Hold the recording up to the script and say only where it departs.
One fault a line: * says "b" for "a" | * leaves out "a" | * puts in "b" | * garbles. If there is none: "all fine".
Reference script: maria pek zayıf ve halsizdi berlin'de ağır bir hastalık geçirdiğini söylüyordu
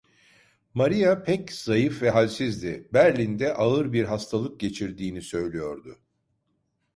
all fine